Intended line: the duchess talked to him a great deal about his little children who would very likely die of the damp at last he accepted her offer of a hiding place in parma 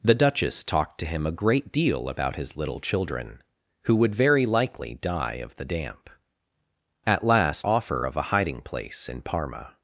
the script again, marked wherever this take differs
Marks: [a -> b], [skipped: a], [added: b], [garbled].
the duchess talked to him a great deal about his little children who would very likely die of the damp at last [skipped: he accepted her] offer of a hiding place in parma